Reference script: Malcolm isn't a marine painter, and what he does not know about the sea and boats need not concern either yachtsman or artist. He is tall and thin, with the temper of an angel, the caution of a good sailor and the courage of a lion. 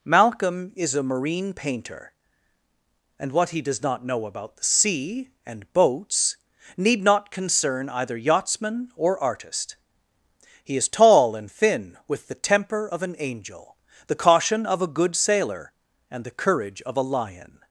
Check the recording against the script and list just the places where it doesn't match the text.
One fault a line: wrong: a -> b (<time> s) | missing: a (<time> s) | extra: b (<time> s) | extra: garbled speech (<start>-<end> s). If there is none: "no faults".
wrong: isn't -> is (0.8 s)